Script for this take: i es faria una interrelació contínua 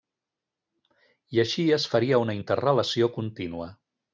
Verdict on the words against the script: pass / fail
fail